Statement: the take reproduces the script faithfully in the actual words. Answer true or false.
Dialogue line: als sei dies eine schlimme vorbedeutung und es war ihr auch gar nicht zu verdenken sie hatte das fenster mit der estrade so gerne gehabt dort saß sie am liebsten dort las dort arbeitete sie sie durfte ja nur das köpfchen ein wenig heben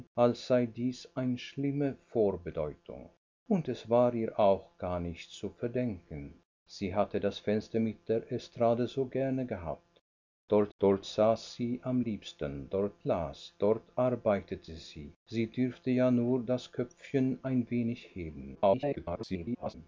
false